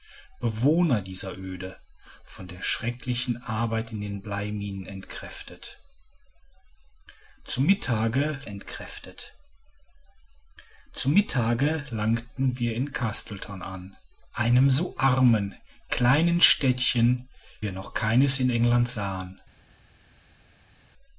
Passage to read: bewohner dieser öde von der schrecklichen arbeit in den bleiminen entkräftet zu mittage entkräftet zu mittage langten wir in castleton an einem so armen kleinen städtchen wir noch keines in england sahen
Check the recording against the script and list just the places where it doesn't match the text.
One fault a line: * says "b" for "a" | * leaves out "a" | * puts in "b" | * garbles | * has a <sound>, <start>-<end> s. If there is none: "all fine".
all fine